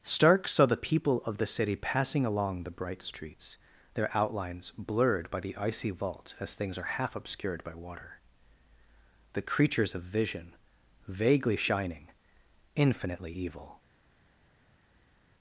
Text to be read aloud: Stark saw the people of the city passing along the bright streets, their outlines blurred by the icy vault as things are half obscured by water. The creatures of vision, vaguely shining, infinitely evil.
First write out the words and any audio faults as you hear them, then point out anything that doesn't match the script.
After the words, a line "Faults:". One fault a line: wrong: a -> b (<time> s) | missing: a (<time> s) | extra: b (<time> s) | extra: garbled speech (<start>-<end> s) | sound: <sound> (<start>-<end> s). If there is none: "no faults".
Stark saw the people of the city passing along the bright streets, their outlines blurred by the icy vault as things are half obscured by water. The creatures of vision, vaguely shining, infinitely evil.
Faults:
no faults